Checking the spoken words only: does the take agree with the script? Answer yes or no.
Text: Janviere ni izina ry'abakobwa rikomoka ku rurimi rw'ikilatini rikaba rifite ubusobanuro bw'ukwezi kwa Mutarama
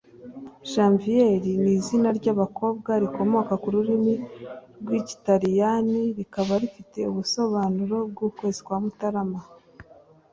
yes